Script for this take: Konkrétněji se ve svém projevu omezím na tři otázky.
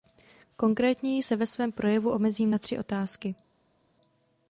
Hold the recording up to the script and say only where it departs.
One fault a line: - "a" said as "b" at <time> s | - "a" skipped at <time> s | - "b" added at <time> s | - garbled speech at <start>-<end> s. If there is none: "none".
none